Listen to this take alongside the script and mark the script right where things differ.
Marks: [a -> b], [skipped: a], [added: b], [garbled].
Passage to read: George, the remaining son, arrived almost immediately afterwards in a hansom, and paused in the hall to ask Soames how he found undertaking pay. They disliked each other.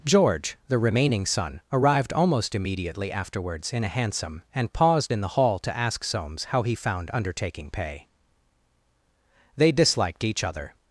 George, the remaining son, arrived almost immediately afterwards in a hansom, and paused in the hall to ask Soames how he found undertaking pay. They disliked each other.